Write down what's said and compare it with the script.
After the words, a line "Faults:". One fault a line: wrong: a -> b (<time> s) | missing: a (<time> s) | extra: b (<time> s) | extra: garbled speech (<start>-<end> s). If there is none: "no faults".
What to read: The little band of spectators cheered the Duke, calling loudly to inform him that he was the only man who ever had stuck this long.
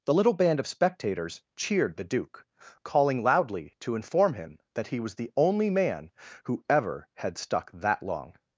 The little band of spectators cheered the Duke, calling loudly to inform him that he was the only man who ever had stuck that long.
Faults:
wrong: this -> that (7.7 s)